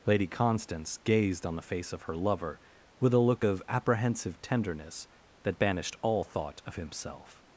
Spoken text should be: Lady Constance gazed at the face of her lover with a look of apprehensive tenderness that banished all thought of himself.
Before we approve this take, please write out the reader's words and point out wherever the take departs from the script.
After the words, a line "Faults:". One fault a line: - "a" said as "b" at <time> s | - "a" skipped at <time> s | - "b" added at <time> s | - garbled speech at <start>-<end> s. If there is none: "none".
Lady Constance gazed on the face of her lover with a look of apprehensive tenderness that banished all thought of himself.
Faults:
- "at" said as "on" at 1.4 s